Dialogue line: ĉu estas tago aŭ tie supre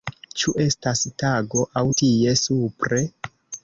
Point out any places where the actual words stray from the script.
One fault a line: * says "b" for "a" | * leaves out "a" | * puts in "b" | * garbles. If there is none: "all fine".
all fine